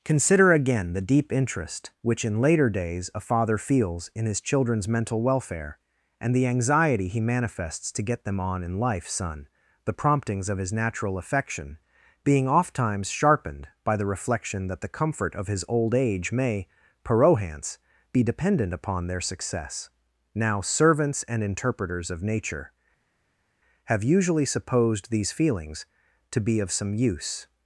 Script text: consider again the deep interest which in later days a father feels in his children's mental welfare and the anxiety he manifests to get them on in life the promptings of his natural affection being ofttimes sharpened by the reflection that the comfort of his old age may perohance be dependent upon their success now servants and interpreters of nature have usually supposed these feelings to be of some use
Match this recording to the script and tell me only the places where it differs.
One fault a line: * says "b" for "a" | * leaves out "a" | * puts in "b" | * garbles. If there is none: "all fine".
* puts in "son"